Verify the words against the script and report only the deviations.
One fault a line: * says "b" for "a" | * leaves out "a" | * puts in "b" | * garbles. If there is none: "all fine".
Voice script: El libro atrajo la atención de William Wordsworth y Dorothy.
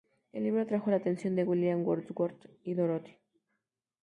all fine